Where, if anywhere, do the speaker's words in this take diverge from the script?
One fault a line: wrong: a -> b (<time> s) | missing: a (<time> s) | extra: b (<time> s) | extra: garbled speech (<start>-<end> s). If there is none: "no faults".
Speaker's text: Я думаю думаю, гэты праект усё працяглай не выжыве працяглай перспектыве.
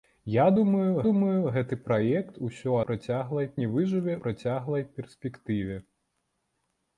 no faults